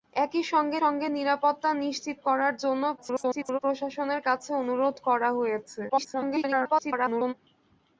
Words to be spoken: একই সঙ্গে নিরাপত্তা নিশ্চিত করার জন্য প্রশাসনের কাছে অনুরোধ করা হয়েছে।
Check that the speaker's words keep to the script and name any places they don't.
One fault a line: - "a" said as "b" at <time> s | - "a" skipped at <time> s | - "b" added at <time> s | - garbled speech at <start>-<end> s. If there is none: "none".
- "সঙ্গে" added at 0.8 s
- garbled speech at 3.0-3.6 s
- garbled speech at 5.9-7.3 s